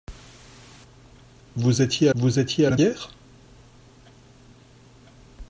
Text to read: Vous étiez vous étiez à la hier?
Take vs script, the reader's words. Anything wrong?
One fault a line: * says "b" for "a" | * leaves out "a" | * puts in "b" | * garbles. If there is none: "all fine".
all fine